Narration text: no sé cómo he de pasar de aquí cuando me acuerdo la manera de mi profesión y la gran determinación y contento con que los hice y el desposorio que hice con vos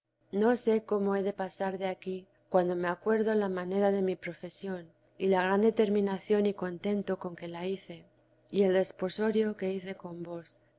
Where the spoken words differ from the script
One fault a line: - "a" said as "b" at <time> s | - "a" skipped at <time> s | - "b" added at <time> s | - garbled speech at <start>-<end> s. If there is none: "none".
- "los" said as "la" at 7.5 s